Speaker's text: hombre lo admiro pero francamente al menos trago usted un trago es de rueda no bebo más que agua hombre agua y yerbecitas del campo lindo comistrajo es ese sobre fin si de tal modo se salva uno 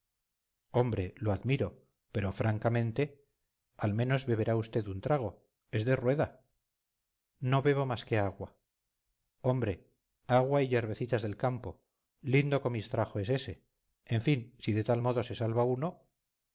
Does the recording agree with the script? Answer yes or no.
no